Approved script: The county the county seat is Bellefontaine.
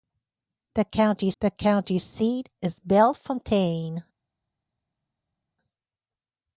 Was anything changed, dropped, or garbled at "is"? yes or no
no